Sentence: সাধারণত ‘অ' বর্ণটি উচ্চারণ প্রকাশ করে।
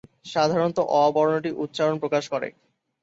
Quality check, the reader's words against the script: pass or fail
pass